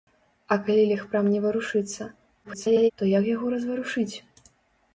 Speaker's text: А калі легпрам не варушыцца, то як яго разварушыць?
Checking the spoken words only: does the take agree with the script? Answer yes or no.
no